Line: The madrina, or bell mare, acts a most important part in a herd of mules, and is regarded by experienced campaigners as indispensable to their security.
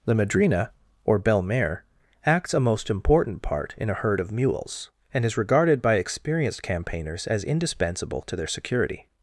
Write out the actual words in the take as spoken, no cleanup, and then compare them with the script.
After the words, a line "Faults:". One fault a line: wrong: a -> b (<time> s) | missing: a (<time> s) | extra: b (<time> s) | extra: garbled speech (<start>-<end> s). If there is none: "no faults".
The madrina, or bell mare, acts a most important part in a herd of mules, and is regarded by experienced campaigners as indispensable to their security.
Faults:
no faults